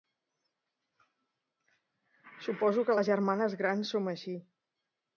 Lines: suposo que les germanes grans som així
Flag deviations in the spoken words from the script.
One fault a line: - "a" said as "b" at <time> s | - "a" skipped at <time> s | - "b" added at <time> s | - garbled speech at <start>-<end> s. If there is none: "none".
none